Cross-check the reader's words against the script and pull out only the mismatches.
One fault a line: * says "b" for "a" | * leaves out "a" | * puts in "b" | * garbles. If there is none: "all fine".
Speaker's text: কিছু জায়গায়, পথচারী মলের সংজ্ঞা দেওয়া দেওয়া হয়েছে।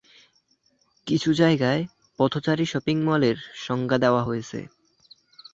* puts in "শপিং"
* leaves out "দেওয়া"